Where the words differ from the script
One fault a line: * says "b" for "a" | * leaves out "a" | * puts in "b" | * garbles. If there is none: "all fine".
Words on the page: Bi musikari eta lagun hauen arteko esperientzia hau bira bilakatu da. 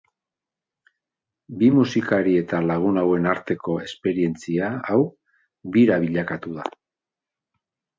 all fine